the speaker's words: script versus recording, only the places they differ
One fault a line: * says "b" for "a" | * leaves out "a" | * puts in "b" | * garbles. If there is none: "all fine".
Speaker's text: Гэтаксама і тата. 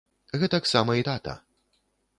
all fine